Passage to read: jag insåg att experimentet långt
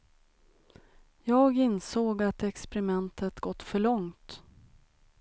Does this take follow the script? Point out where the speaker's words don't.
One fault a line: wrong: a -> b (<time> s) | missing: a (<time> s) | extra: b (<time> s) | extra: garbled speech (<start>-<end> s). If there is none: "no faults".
extra: gått för (3.4 s)